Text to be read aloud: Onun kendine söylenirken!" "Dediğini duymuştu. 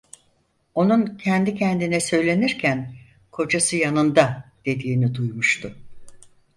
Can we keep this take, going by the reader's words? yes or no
no